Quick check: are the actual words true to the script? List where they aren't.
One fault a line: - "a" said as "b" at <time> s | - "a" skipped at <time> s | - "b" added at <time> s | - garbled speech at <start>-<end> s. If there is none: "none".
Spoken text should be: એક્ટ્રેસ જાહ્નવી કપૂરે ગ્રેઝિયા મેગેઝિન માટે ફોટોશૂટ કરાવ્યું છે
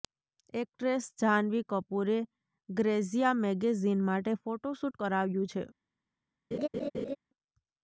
none